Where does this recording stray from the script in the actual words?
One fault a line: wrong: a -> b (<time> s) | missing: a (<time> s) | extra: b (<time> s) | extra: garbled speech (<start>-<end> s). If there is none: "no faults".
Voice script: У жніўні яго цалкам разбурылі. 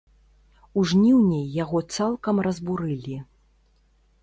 no faults